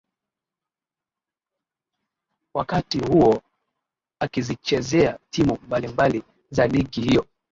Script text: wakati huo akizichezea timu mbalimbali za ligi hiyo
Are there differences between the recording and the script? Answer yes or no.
no